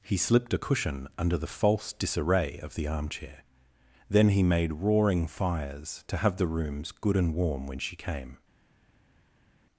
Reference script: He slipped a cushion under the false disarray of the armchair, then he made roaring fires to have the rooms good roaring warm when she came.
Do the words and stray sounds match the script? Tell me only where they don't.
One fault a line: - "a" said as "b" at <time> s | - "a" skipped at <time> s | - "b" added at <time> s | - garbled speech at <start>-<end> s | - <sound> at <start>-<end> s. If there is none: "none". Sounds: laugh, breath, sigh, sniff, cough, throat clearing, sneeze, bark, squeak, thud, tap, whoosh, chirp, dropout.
- "roaring" said as "and" at 7.2 s